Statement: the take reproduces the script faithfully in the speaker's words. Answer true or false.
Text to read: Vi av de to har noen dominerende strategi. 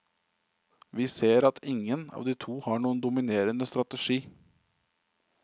false